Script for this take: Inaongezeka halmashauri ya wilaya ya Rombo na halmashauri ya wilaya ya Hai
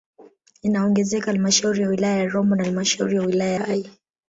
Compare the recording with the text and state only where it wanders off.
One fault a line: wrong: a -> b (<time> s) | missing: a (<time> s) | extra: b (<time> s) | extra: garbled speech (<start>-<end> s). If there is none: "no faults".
missing: ya (3.6 s)